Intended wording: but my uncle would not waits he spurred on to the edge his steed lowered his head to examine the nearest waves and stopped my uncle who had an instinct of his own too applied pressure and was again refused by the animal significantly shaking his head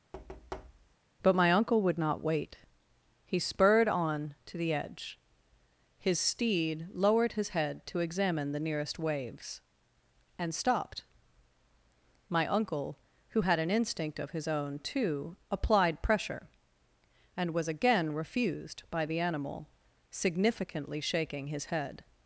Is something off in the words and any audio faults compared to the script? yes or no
yes